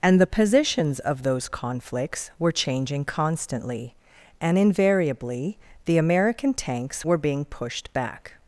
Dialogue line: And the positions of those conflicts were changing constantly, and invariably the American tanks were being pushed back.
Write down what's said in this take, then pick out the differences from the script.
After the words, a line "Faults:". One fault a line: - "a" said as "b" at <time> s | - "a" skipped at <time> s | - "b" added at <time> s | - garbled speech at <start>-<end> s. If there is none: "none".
And the positions of those conflicts were changing constantly, and invariably the American tanks were being pushed back.
Faults:
none